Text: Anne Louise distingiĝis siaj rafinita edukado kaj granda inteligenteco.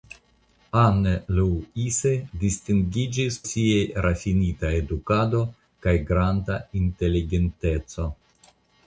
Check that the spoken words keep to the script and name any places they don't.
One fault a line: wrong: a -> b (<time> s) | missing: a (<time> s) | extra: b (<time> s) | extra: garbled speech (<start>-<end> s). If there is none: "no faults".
no faults